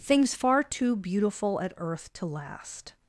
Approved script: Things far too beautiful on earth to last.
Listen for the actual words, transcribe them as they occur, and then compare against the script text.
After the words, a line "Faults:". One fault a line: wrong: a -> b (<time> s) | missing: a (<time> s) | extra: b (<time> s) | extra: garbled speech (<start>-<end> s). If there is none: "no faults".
Things far too beautiful at earth to last.
Faults:
wrong: on -> at (1.6 s)